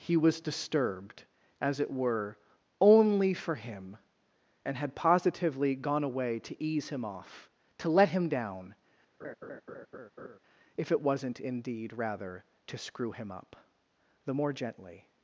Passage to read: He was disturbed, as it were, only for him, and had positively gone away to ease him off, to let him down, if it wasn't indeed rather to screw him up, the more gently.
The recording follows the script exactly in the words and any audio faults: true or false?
false